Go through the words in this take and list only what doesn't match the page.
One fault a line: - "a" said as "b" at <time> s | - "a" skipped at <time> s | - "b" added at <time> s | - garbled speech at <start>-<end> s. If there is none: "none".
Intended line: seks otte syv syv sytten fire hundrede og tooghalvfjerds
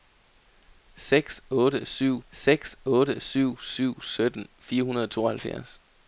- "seks otte syv" added at 2.3 s